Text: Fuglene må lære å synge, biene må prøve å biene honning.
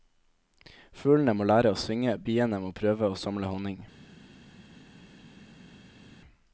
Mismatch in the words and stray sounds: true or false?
true